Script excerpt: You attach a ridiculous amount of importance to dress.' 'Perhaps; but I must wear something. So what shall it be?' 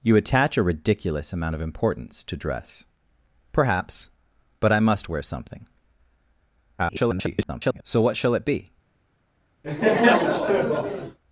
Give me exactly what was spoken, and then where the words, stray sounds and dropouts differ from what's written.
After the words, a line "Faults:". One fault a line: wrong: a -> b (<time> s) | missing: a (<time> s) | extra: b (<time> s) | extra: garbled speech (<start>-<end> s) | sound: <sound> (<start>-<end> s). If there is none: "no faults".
You attach a ridiculous amount of importance to dress.' 'Perhaps; but I must wear something. [garbled] So what shall it be?'
Faults:
extra: garbled speech (6.8-7.8 s)
sound: laugh (9.6-11.2 s)